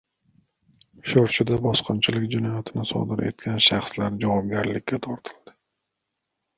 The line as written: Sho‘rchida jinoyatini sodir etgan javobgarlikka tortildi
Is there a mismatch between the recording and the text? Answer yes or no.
yes